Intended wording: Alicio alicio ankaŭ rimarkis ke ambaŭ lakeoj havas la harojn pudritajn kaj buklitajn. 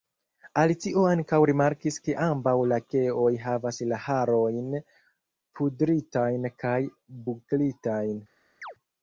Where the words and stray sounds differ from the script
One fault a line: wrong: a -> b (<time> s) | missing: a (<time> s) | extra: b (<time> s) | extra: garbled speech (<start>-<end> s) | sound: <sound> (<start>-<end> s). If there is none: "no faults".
missing: alicio (1.0 s)
sound: chirp (8.6-8.7 s)